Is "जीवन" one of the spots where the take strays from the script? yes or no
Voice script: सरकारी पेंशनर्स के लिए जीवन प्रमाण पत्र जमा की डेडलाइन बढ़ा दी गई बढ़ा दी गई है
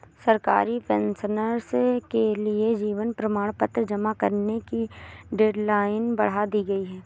no